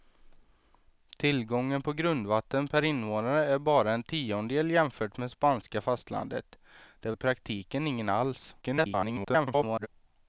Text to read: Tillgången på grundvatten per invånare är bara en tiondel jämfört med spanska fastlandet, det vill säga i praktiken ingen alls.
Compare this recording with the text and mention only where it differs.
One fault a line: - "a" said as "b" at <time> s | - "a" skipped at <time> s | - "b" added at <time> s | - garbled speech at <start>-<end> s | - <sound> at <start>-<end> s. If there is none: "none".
- "vill säga" skipped at 7.1 s
- garbled speech at 8.6-9.9 s